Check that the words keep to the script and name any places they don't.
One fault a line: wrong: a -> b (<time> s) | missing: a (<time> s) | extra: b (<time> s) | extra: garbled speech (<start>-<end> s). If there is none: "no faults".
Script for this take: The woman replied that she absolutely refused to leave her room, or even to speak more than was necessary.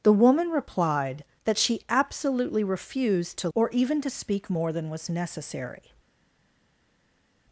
missing: leave her room (3.5 s)